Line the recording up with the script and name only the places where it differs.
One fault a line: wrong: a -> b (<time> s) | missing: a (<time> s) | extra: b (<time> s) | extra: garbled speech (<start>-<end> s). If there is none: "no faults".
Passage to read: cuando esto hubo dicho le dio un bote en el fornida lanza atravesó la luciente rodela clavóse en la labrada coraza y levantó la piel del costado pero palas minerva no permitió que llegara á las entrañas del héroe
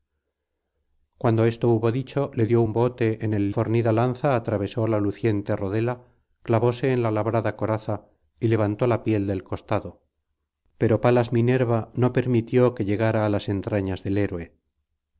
no faults